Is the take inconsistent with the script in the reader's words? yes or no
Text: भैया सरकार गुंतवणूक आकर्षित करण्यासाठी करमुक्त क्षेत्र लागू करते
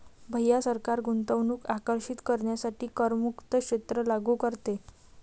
no